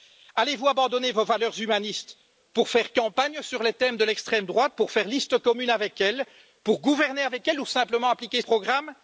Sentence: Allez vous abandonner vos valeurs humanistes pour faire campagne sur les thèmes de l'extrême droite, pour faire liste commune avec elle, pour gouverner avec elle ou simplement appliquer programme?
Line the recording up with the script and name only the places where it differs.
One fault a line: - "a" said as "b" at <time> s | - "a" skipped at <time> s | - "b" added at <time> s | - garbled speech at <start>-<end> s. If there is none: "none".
none